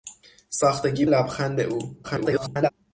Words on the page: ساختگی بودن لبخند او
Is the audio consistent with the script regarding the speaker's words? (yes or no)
no